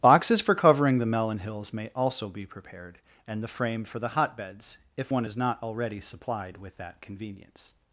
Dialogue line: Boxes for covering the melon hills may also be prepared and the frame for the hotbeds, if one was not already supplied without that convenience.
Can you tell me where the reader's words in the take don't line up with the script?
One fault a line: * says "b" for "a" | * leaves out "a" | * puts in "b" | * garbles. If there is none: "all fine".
* says "is" for "was"
* says "with" for "without"